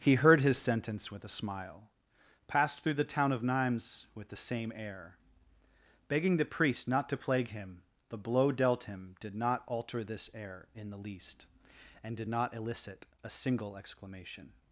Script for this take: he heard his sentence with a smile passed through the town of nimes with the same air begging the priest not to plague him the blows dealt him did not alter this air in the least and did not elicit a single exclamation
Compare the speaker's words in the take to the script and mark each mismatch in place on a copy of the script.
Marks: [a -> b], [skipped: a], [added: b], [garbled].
he heard his sentence with a smile passed through the town of nimes with the same air begging the priest not to plague him the [blows -> blow] dealt him did not alter this air in the least and did not elicit a single exclamation